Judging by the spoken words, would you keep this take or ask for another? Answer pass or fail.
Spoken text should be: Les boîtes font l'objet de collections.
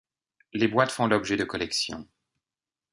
pass